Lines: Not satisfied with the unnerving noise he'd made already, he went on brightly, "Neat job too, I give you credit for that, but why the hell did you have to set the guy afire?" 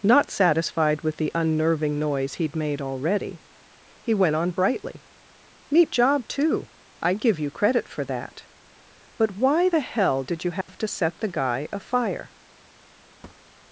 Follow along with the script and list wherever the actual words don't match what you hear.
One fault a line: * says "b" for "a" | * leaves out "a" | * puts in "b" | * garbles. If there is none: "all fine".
all fine